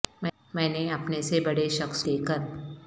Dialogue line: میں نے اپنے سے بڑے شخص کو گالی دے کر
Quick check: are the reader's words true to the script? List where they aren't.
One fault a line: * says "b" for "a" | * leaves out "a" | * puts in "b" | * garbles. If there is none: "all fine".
* leaves out "کو گالی"